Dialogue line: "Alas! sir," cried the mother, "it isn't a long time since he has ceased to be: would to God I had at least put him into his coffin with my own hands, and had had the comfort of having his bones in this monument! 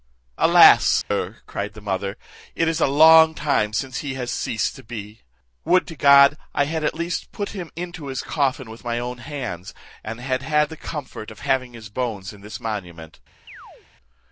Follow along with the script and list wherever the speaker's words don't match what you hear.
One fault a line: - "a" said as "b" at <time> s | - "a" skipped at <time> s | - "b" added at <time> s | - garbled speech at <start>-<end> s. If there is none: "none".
- "isn't" said as "is" at 2.7 s